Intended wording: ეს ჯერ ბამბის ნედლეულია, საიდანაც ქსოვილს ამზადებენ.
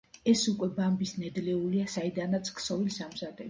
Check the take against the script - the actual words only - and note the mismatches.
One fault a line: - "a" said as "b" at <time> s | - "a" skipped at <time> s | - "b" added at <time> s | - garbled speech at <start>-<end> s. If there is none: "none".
- "ჯერ" said as "უკვე" at 0.5 s